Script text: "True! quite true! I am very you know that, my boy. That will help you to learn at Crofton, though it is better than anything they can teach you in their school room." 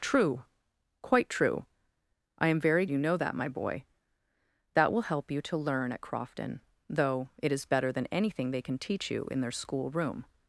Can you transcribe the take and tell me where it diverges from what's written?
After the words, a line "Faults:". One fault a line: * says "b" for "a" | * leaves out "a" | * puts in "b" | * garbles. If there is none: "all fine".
"True! quite true! I am very you know that, my boy. That will help you to learn at Crofton, though it is better than anything they can teach you in their school room."
Faults:
all fine